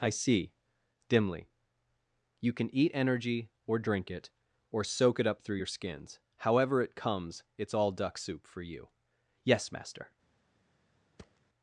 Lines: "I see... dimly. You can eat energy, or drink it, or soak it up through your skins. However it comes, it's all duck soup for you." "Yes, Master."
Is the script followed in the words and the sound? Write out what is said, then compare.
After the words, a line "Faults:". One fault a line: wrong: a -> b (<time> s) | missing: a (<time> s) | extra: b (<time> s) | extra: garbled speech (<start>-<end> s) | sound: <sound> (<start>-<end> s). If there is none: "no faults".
"I see... dimly. You can eat energy, or drink it, or soak it up through your skins. However it comes, it's all duck soup for you." "Yes, Master."
Faults:
sound: thud (11.2-11.4 s)